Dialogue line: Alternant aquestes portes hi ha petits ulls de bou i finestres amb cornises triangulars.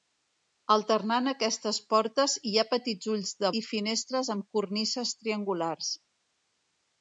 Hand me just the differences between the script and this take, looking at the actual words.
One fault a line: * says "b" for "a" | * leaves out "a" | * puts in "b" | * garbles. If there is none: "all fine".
* leaves out "bou"